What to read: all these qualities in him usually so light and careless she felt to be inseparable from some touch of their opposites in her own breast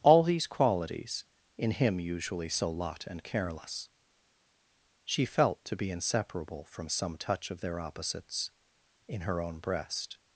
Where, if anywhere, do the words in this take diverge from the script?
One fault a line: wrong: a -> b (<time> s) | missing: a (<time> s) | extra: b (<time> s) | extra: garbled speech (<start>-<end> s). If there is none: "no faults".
wrong: light -> lot (2.7 s)